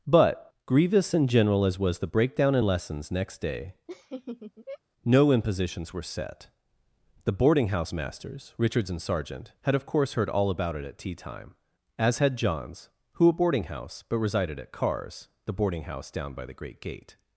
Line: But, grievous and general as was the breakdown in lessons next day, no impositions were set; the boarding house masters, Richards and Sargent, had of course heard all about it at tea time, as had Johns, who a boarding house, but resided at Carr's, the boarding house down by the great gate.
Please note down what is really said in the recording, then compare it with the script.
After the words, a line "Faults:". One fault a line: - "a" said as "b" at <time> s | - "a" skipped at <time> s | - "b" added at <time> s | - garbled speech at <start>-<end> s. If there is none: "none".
But, grievous and general as was the breakdown in lessons next day, no impositions were set; the boarding house masters, Richards and Sargent, had of course heard all about it at tea time, as had Johns, who a boarding house, but resided at Carr's, the boarding house down by the great gate.
Faults:
none